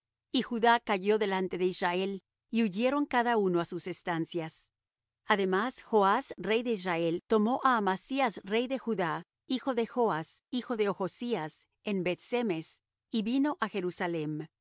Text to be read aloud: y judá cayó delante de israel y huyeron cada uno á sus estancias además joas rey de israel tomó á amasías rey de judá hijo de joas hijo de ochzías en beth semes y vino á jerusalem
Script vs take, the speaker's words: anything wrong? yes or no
no